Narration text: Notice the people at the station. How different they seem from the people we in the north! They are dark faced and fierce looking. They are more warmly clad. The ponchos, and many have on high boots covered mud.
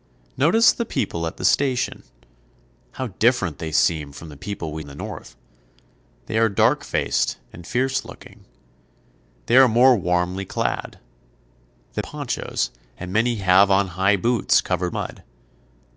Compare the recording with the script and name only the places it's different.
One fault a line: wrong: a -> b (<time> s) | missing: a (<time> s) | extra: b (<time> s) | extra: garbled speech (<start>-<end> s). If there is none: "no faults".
no faults